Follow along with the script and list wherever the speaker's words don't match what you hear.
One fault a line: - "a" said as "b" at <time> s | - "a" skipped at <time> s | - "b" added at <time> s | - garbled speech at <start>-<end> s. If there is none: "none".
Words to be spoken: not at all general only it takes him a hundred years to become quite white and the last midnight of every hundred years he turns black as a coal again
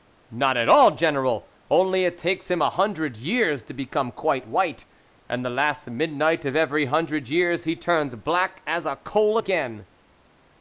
none